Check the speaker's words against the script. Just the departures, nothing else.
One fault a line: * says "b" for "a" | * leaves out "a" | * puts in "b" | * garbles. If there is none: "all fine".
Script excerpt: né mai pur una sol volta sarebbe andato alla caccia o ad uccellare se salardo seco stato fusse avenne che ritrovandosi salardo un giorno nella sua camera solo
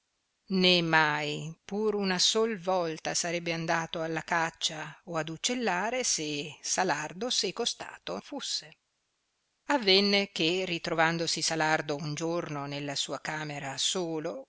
all fine